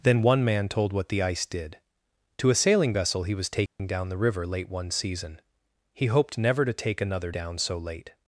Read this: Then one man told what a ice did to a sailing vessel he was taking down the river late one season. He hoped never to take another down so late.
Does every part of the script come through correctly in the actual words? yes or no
no